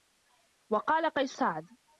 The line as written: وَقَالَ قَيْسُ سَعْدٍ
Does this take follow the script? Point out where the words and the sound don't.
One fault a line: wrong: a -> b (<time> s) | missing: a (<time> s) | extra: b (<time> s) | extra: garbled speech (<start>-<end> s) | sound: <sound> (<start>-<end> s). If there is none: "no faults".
no faults